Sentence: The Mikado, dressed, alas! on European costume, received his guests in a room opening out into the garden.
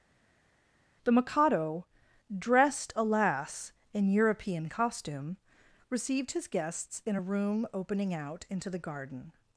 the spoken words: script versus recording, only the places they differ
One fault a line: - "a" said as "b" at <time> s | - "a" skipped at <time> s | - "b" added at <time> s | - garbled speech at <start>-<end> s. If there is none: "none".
- "on" said as "in" at 3.9 s